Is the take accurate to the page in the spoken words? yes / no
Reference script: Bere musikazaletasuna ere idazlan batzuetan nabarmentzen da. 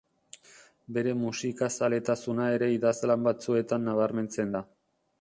yes